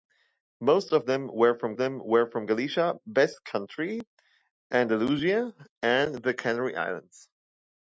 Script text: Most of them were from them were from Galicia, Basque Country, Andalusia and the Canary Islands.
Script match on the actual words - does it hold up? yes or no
yes